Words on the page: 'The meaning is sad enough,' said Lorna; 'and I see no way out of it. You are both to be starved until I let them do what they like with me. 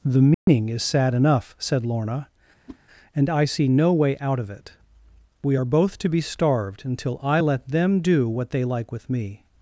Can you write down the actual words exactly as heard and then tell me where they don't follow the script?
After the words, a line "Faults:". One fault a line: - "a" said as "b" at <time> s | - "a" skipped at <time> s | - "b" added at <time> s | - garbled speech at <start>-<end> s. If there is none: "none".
'The meaning is sad enough,' said Lorna; 'and I see no way out of it. We are both to be starved until I let them do what they like with me.
Faults:
- "You" said as "We" at 5.4 s